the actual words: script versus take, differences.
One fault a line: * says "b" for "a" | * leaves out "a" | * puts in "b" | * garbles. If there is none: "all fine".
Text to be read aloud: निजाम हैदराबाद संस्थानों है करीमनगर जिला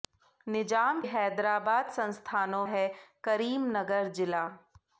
all fine